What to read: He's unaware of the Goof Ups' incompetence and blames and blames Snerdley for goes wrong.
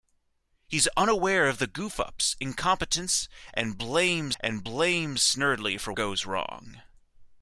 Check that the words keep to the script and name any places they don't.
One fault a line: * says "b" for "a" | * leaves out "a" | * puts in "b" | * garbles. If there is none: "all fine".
all fine